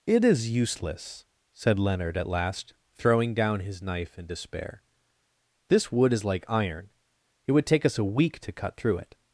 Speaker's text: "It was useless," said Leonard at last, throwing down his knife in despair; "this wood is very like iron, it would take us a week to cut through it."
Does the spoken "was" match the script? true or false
false